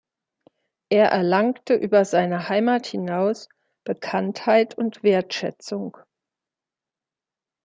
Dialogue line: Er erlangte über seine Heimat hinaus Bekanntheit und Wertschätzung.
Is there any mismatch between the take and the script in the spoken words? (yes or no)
no